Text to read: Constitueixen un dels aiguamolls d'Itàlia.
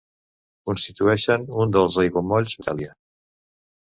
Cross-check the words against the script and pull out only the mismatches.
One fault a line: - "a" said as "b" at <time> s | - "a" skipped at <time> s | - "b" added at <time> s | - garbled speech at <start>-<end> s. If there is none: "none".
none